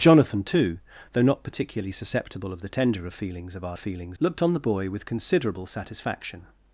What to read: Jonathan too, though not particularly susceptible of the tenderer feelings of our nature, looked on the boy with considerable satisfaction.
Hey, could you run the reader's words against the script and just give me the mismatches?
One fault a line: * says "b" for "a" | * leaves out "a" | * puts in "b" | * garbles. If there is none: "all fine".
* says "feelings" for "nature"